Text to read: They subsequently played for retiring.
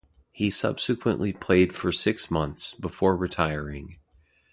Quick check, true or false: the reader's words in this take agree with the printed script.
false